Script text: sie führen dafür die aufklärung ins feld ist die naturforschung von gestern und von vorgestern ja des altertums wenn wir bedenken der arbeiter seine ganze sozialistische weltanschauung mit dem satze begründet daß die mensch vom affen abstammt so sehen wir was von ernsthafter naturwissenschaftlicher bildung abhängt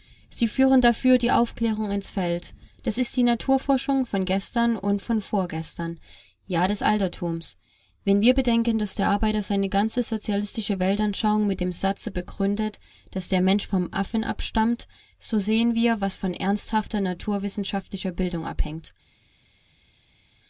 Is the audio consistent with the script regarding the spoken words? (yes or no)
no